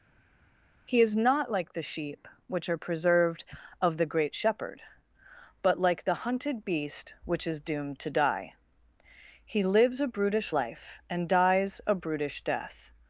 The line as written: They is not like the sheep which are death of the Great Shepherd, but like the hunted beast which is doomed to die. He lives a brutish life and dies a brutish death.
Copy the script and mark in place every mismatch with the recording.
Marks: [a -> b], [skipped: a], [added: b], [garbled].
[They -> He] is not like the sheep which are [death -> preserved] of the Great Shepherd, but like the hunted beast which is doomed to die. He lives a brutish life and dies a brutish death.